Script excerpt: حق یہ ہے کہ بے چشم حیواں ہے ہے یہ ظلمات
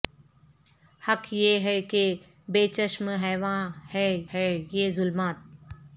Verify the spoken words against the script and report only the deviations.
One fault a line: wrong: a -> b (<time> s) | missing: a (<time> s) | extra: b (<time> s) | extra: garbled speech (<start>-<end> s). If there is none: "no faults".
no faults